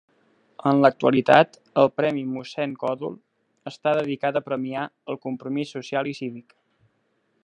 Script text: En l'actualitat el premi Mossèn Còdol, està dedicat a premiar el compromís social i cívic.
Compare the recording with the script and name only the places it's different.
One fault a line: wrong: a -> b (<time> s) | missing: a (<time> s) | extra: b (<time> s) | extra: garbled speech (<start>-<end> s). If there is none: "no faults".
no faults